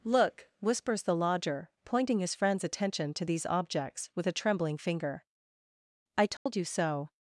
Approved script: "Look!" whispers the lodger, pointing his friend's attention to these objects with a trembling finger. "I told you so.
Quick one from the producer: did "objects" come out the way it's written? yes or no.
yes